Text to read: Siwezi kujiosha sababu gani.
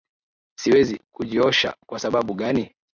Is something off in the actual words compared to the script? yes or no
yes